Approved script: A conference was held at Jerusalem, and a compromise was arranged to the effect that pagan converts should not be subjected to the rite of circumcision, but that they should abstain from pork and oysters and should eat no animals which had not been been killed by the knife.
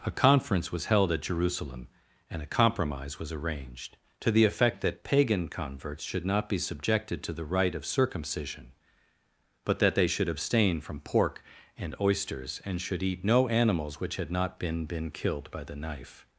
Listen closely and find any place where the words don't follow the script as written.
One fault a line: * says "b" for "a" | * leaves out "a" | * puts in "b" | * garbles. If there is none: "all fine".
all fine